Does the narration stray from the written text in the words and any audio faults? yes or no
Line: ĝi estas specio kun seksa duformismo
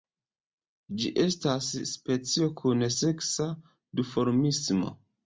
no